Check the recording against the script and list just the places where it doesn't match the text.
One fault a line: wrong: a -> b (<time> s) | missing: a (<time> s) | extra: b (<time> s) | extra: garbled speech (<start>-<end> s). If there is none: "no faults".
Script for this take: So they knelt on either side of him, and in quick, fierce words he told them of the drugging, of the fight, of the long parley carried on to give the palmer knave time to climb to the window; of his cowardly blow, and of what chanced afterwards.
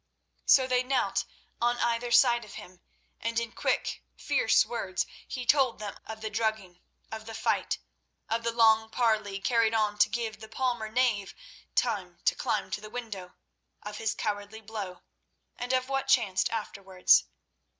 no faults